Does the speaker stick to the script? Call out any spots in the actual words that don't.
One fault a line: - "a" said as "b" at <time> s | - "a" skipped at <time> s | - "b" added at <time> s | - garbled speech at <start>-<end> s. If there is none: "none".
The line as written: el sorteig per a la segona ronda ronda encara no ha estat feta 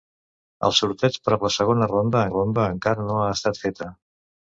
none